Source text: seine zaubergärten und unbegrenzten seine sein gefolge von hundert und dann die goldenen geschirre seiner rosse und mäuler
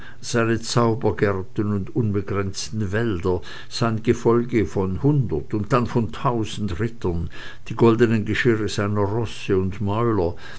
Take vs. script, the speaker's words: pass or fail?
fail